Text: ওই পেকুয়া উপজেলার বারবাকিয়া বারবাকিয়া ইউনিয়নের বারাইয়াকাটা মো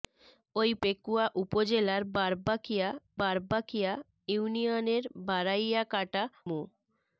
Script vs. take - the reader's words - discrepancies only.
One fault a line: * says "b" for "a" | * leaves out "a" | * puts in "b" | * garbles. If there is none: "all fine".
all fine